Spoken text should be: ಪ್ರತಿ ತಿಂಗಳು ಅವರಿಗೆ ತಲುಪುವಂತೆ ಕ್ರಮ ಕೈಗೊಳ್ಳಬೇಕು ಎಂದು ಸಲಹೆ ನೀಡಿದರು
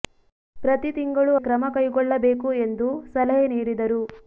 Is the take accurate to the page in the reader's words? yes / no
no